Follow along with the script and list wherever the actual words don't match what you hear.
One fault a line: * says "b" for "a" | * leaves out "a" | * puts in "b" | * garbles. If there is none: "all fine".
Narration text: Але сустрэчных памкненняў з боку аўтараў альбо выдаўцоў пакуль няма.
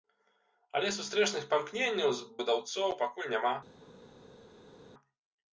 * leaves out "боку аўтараў альбо"